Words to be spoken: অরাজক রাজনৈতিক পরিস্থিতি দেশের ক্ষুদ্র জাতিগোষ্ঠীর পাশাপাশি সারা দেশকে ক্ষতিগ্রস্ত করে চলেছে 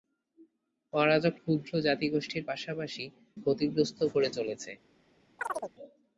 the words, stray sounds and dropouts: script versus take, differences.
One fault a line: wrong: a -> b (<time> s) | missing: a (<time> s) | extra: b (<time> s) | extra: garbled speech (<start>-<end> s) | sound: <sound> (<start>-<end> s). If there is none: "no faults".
missing: রাজনৈতিক পরিস্থিতি দেশের (1.3 s)
missing: সারা দেশকে (3.0 s)
sound: chirp (5.4-5.7 s)